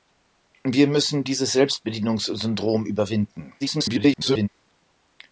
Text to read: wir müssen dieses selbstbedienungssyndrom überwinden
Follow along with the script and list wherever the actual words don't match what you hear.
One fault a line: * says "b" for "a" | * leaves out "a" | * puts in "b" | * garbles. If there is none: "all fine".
* garbles